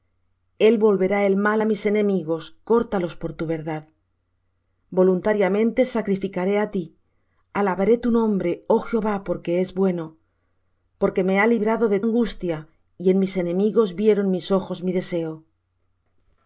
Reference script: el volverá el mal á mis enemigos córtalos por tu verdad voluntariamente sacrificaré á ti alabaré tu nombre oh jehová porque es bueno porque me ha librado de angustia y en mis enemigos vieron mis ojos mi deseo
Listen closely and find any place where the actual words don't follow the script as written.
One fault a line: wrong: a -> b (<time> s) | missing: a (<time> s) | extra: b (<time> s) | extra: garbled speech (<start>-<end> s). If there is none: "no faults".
no faults